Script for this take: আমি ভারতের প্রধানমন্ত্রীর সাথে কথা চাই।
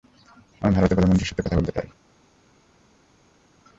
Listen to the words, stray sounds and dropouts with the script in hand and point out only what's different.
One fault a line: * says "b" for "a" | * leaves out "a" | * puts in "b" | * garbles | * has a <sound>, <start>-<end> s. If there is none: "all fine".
* puts in "বলতে"